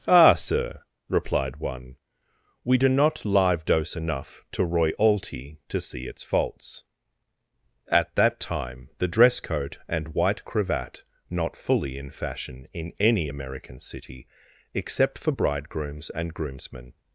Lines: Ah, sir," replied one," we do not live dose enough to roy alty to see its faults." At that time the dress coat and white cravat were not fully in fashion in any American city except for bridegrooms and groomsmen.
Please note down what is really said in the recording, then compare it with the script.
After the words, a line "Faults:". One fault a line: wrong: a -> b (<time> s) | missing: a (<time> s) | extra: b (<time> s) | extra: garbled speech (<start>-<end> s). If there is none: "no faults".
Ah, sir," replied one," we do not live dose enough to roy alty to see its faults." At that time the dress coat and white cravat not fully in fashion in any American city except for bridegrooms and groomsmen.
Faults:
missing: were (11.0 s)